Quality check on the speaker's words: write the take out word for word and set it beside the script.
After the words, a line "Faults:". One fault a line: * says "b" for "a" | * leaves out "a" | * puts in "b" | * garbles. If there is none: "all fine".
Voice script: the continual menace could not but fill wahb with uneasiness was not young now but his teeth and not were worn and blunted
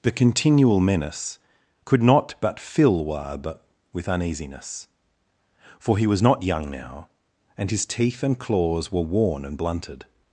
the continual menace could not but fill wahb with uneasiness for he was not young now and his teeth and claws were worn and blunted
Faults:
* puts in "for he"
* says "and" for "but"
* says "claws" for "not"